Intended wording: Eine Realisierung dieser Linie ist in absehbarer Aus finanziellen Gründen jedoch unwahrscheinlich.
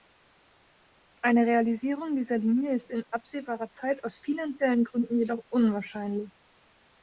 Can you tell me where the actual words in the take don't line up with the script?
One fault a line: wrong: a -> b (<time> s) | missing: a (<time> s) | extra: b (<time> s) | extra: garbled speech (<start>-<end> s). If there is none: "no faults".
extra: Zeit (3.7 s)